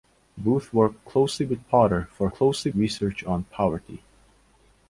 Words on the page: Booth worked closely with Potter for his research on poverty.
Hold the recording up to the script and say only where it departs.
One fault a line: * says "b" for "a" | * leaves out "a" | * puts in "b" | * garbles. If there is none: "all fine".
* says "closely" for "his"